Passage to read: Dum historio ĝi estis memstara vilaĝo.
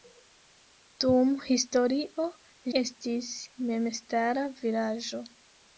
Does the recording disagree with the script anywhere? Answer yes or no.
yes